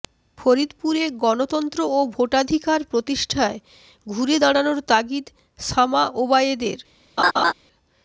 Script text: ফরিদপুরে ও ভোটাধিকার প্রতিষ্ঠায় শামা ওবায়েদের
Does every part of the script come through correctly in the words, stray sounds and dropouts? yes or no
no